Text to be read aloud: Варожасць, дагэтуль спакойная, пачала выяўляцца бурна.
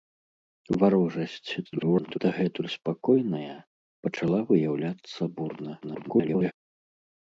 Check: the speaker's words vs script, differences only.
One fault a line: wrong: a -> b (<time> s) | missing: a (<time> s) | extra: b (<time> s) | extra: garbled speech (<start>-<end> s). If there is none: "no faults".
extra: garbled speech (1.6-2.2 s)
extra: garbled speech (5.8-6.5 s)